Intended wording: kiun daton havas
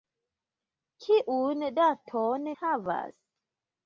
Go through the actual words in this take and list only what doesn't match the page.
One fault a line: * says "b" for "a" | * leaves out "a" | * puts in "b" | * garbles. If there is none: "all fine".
all fine